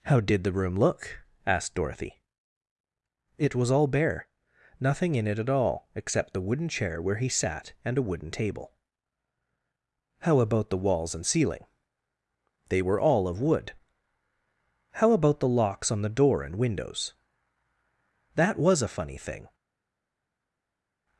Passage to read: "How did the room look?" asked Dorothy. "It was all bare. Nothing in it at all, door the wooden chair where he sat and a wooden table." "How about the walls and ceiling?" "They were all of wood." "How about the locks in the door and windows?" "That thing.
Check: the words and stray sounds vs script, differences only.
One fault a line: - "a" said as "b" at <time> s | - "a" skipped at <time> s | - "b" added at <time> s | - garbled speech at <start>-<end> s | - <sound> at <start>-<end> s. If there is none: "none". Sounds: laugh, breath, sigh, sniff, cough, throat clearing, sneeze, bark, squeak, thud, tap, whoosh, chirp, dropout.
- "door" said as "except" at 5.9 s
- "in" said as "on" at 15.9 s
- "was a funny" added at 18.6 s